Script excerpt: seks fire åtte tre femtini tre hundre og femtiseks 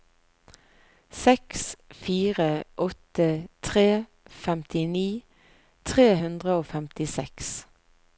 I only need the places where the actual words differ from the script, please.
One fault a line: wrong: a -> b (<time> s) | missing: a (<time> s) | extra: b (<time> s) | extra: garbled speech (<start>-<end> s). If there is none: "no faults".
no faults